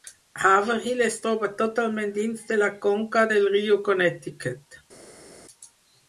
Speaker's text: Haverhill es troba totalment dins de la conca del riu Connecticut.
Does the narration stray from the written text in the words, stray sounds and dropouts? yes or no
no